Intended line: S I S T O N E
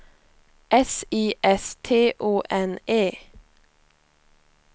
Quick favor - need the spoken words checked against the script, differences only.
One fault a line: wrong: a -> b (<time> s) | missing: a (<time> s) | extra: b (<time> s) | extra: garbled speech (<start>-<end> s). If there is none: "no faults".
no faults